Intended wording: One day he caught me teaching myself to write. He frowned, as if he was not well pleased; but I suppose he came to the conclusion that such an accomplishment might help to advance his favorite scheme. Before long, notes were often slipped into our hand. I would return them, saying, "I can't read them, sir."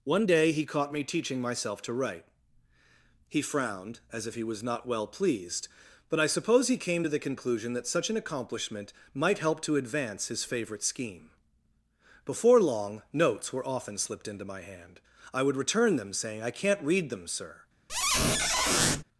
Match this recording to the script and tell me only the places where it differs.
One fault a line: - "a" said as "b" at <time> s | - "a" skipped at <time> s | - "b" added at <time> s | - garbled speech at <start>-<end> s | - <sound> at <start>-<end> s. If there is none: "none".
- "our" said as "my" at 14.5 s
- squeak at 17.9-19.0 s